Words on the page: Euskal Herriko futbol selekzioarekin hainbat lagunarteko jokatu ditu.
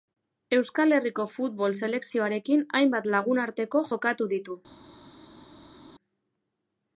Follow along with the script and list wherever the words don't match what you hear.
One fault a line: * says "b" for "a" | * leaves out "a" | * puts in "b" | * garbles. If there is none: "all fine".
all fine